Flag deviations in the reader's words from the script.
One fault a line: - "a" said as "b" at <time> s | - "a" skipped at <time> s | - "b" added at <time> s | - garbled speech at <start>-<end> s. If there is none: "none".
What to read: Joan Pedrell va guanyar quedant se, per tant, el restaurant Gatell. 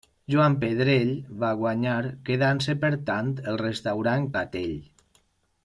none